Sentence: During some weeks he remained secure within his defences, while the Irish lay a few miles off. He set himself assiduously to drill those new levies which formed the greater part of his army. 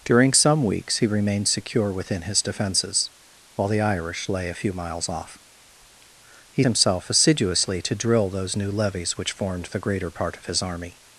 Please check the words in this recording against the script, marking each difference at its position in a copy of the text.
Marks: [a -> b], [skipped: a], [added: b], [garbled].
During some weeks he remained secure within his defences, while the Irish lay a few miles off. He [skipped: set] himself assiduously to drill those new levies which formed the greater part of his army.